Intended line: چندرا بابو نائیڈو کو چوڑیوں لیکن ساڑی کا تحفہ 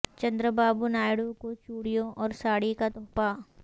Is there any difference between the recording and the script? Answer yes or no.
yes